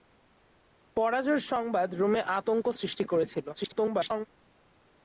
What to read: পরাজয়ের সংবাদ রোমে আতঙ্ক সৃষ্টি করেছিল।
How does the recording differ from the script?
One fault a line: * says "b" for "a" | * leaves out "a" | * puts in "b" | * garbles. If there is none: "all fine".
* garbles